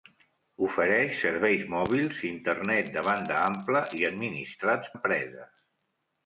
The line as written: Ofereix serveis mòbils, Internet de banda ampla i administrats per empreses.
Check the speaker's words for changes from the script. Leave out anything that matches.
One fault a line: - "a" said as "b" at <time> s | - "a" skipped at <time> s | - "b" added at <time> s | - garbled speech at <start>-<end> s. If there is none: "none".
- "per" skipped at 4.9 s